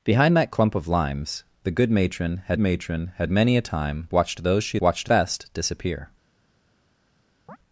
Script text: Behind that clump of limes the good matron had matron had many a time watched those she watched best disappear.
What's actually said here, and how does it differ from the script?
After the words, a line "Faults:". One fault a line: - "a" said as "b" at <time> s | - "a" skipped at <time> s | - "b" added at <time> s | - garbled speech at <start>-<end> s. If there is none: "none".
Behind that clump of limes the good matron had matron had many a time watched those she watched best disappear.
Faults:
none